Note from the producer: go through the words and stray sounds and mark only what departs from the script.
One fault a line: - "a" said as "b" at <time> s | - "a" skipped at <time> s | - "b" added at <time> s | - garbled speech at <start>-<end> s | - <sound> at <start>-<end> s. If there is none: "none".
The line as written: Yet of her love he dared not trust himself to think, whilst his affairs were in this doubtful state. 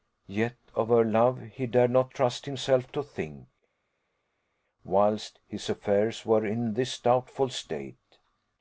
none